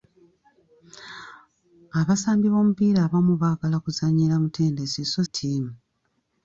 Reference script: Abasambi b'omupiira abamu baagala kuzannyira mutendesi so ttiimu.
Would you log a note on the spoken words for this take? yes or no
no